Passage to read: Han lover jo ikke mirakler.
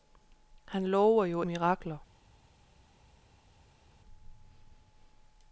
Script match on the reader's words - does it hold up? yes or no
no